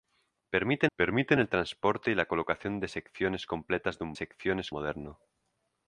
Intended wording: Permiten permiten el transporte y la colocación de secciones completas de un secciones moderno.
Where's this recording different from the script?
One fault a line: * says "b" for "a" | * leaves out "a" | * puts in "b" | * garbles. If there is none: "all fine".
all fine